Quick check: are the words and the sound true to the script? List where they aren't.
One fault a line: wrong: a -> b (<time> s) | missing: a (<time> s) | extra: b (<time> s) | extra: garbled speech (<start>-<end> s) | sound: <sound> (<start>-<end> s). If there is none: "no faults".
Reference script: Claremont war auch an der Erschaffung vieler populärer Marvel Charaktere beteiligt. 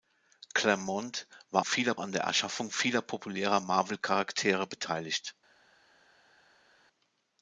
wrong: auch -> vieler (1.6 s)